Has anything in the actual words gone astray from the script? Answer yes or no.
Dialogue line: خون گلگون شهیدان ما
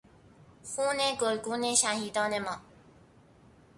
no